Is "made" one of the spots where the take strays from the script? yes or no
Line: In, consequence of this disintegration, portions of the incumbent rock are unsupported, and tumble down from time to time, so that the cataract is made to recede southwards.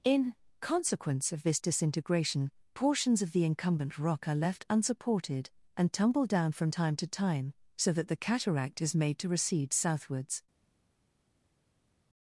no